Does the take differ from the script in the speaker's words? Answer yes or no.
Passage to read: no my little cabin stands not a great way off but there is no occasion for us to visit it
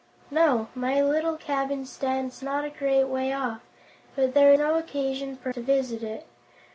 yes